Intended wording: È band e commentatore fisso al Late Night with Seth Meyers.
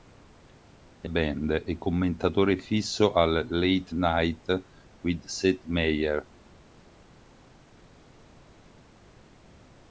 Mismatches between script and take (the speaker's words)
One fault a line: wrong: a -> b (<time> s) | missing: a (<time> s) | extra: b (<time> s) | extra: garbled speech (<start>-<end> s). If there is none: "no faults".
no faults